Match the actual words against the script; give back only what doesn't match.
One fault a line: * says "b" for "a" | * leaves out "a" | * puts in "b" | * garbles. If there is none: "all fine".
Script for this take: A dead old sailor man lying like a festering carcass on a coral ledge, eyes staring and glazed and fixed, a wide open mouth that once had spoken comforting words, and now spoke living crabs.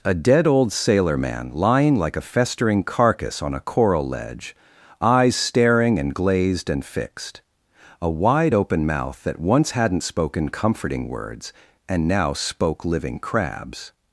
* says "hadn't" for "had"